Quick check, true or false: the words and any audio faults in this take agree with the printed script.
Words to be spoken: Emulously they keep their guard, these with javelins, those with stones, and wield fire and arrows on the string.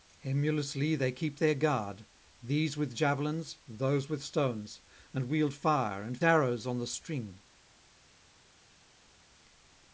true